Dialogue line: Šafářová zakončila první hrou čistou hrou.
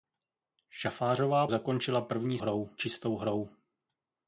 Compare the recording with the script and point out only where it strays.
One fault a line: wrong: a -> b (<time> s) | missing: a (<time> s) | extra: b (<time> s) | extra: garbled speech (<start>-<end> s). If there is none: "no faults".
no faults